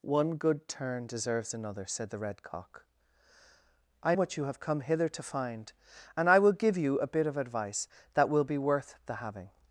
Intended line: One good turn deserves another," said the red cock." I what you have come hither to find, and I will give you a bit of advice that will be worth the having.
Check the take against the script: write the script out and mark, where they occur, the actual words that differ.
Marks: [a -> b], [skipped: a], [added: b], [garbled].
One good turn deserves another," said the red cock." I what you have come hither to find, and I will give you a bit of advice that will be worth the having.